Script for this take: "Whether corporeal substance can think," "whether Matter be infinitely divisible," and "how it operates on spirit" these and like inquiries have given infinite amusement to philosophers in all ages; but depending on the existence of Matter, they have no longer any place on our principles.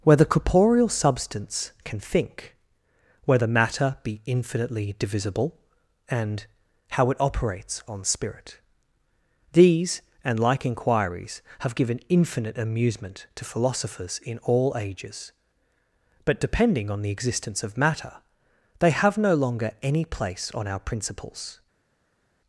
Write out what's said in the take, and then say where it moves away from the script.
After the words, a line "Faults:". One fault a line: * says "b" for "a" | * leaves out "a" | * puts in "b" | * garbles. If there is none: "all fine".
"Whether corporeal substance can think," "whether Matter be infinitely divisible," and "how it operates on spirit" these and like inquiries have given infinite amusement to philosophers in all ages; but depending on the existence of Matter, they have no longer any place on our principles.
Faults:
all fine